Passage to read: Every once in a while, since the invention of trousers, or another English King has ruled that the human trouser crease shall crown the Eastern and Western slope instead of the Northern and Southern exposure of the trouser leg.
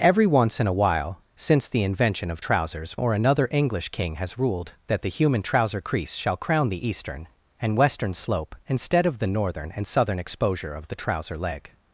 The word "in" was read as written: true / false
true